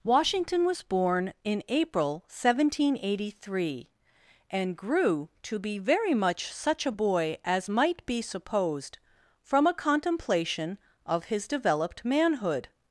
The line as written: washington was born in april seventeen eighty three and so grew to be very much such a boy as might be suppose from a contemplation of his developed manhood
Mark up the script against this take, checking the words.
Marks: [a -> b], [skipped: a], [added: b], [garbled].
washington was born in april seventeen eighty three and [skipped: so] grew to be very much such a boy as might be [suppose -> supposed] from a contemplation of his developed manhood